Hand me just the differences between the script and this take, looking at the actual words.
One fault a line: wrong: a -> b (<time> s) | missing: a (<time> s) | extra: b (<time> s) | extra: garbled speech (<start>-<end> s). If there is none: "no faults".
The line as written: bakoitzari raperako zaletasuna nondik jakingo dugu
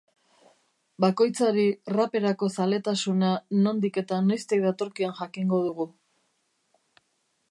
extra: eta noiztik datorkion (4.0 s)